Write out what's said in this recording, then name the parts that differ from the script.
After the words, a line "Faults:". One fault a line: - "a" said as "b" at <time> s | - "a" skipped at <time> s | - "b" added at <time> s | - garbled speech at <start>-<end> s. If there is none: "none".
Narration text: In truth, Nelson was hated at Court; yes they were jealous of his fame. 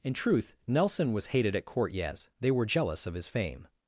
In truth, Nelson was hated at Court; yes they were jealous of his fame.
Faults:
none